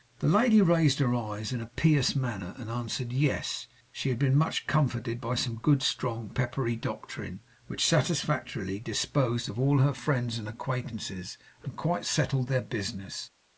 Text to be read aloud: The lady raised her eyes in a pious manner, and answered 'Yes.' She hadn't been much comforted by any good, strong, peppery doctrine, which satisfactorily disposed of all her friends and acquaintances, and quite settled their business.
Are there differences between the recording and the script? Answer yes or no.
yes